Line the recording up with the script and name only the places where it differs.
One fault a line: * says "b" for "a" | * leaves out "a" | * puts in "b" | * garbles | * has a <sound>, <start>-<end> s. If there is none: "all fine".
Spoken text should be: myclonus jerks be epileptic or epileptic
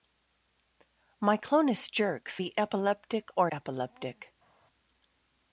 all fine